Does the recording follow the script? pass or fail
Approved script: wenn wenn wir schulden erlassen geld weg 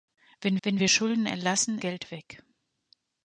pass